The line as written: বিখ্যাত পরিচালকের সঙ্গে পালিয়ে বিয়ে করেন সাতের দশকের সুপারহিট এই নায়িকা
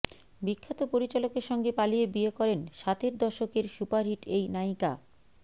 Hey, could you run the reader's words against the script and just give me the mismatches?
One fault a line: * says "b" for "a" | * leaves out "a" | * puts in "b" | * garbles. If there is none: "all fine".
all fine